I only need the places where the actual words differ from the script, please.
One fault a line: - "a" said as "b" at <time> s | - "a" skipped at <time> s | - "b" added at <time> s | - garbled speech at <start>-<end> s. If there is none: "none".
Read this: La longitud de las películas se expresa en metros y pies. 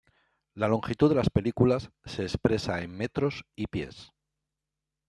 none